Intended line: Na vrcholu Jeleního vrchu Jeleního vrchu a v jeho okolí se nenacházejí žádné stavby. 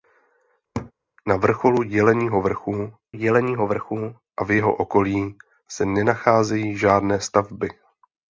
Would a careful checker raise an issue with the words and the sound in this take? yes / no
yes